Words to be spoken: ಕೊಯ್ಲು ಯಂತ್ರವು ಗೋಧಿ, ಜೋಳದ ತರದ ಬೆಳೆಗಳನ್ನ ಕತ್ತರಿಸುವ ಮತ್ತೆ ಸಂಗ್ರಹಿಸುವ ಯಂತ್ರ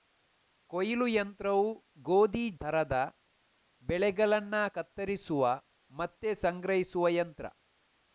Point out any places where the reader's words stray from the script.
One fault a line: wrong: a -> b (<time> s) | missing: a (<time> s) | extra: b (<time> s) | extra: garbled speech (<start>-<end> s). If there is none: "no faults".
missing: ಜೋಳದ (2.5 s)